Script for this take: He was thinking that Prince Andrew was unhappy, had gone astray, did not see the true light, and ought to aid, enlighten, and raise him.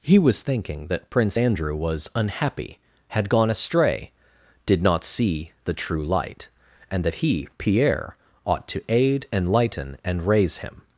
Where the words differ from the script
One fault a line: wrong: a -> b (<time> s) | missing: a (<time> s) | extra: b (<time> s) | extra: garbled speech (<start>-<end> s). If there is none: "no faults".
extra: that he Pierre (7.0 s)